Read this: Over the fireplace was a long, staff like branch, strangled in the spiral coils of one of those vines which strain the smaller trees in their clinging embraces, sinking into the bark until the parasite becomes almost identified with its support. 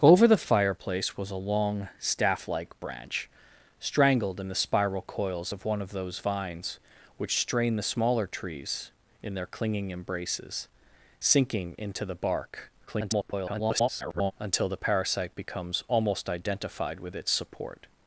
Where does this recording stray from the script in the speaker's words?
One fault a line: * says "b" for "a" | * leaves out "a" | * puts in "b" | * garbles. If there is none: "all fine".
* garbles